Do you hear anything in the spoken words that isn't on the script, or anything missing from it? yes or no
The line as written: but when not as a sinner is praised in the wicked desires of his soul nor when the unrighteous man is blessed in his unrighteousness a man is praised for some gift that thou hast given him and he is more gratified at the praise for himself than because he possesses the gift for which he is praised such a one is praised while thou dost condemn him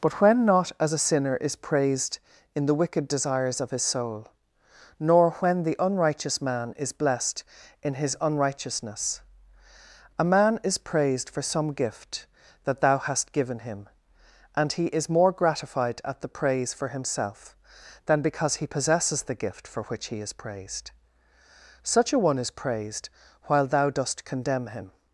no